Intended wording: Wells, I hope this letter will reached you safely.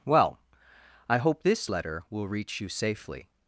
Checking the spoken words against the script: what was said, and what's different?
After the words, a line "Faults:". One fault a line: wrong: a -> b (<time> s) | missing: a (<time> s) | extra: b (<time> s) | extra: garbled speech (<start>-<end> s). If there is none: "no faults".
Well, I hope this letter will reach you safely.
Faults:
wrong: Wells -> Well (0.0 s)
wrong: reached -> reach (2.3 s)